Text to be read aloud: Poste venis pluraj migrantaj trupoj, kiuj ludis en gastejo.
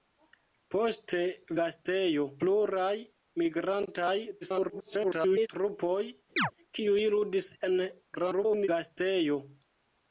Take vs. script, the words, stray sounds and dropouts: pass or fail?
fail